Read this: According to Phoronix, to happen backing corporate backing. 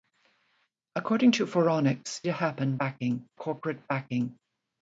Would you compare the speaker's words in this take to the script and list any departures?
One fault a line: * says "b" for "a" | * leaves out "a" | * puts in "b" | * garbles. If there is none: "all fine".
all fine